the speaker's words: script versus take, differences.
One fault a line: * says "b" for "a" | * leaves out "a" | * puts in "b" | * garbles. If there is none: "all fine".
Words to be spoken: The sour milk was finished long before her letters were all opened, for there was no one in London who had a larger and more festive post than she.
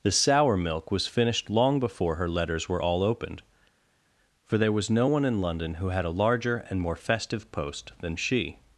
all fine